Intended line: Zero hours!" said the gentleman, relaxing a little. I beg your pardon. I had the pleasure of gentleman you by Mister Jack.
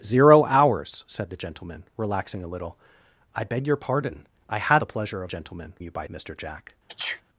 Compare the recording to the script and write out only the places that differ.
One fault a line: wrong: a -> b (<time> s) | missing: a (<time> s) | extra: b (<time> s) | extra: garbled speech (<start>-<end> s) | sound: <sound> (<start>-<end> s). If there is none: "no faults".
sound: sneeze (6.9-7.2 s)